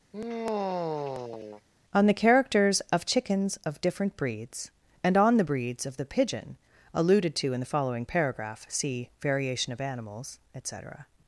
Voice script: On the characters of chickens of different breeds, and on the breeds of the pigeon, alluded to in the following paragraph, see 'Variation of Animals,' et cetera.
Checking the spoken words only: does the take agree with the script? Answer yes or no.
yes